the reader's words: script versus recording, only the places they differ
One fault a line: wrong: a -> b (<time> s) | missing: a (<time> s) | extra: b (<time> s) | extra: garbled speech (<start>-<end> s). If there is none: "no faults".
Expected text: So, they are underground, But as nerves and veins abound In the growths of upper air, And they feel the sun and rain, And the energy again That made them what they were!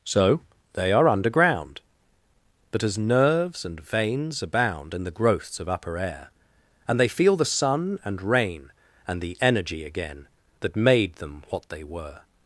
no faults